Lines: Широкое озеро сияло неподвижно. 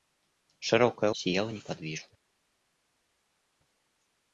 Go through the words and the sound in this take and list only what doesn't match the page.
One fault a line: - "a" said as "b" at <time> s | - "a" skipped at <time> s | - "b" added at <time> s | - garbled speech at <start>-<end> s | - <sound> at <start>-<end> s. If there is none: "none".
- "озеро" skipped at 1.1 s